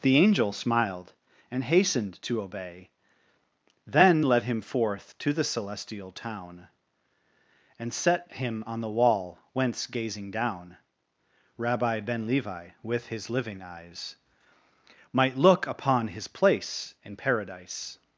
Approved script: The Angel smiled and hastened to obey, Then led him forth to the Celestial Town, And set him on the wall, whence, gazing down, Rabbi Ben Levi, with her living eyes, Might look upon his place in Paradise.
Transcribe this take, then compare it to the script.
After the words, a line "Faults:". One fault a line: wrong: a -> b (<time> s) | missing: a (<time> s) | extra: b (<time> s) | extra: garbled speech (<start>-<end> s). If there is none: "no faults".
The Angel smiled and hastened to obey, Then led him forth to the Celestial Town, And set him on the wall, whence, gazing down, Rabbi Ben Levi, with his living eyes, Might look upon his place in Paradise.
Faults:
wrong: her -> his (13.1 s)